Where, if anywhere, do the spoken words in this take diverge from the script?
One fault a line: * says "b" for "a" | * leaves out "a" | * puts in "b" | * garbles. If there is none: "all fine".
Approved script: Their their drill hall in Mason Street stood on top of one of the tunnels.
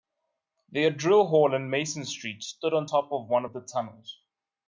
* leaves out "their"